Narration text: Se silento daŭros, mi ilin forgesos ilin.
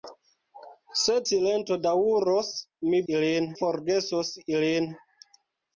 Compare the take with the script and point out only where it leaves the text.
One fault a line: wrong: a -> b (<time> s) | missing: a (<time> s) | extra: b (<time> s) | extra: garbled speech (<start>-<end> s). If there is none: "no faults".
no faults